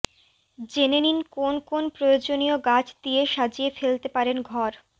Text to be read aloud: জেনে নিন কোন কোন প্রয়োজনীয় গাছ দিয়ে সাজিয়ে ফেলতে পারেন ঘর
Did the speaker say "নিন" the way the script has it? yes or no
yes